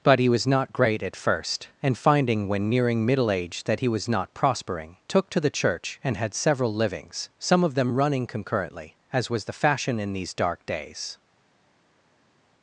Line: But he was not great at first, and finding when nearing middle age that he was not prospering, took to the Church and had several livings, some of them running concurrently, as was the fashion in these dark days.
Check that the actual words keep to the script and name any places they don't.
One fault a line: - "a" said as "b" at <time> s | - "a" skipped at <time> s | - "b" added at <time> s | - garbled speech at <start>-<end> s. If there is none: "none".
none